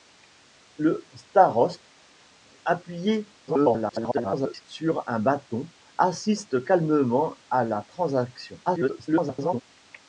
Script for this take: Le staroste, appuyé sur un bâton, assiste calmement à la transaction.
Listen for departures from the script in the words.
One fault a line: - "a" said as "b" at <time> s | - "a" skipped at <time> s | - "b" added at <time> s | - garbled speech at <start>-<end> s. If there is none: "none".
- garbled speech at 3.5-4.6 s
- garbled speech at 8.7-9.6 s